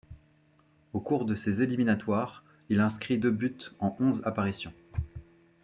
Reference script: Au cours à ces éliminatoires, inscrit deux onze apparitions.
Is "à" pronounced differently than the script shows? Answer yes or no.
yes